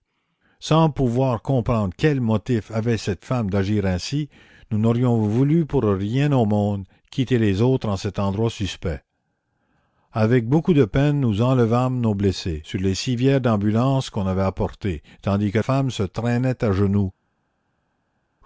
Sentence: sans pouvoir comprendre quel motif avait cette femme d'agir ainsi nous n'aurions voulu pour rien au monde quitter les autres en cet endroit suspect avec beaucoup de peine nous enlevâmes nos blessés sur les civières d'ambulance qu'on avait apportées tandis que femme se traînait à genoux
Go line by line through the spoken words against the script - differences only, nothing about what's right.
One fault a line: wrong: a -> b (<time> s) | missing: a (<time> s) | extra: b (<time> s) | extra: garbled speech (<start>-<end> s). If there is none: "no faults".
no faults